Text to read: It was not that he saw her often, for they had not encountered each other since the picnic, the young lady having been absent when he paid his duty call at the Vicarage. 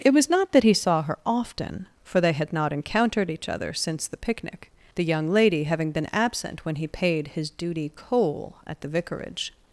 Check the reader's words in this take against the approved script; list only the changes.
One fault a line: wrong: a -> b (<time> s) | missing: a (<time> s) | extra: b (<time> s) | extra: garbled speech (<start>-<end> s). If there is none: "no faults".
wrong: call -> coal (7.9 s)